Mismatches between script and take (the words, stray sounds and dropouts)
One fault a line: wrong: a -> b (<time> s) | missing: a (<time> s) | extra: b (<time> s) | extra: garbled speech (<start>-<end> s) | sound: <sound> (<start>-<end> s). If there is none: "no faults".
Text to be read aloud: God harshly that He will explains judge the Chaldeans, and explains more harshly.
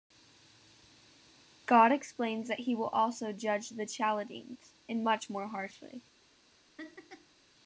wrong: harshly -> explains (1.9 s)
wrong: explains -> also (2.9 s)
wrong: explains -> much (5.0 s)
sound: laugh (6.8-7.4 s)